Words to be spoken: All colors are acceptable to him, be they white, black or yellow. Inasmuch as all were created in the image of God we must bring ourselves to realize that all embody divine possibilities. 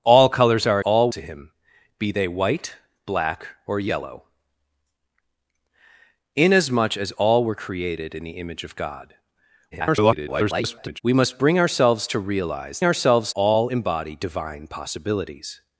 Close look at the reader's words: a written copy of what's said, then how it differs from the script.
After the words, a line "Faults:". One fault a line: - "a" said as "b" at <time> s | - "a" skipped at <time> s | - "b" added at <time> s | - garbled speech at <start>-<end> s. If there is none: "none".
All colors are all to him, be they white, black or yellow. Inasmuch as all were created in the image of God [garbled] we must bring ourselves to realize ourselves all embody divine possibilities.
Faults:
- "acceptable" said as "all" at 0.8 s
- garbled speech at 9.7-11.0 s
- "that" said as "ourselves" at 12.8 s